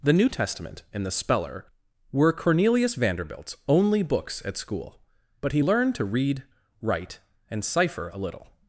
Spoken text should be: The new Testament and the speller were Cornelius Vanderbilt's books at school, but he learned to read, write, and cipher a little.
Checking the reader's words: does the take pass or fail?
fail